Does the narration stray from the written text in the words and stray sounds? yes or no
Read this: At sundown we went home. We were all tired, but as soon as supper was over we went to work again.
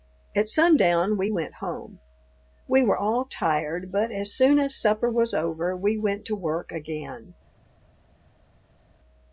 no